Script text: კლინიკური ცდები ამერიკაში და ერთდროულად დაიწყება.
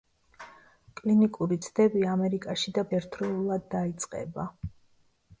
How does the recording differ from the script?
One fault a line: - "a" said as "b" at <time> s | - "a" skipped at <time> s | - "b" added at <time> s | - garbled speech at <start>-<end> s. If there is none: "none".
none